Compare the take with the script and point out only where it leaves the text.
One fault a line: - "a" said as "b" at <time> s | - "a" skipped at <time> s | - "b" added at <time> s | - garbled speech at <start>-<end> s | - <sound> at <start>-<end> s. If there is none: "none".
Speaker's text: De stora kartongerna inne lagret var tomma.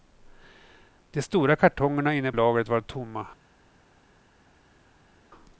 none